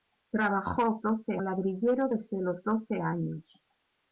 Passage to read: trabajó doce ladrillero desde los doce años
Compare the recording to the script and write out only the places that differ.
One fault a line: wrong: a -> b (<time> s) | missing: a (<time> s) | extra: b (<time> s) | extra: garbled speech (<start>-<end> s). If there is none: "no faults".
no faults